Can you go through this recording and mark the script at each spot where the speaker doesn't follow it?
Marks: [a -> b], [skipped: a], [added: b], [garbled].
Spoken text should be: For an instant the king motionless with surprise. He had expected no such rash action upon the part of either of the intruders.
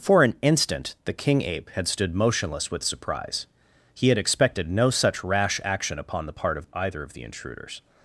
For an instant the king [added: ape had stood] motionless with surprise. He had expected no such rash action upon the part of either of the intruders.